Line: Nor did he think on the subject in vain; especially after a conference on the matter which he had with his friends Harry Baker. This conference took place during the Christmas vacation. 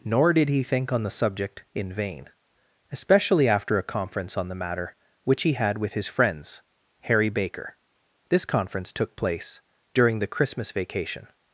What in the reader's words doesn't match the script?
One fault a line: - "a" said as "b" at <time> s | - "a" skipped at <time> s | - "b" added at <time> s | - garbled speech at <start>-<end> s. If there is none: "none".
none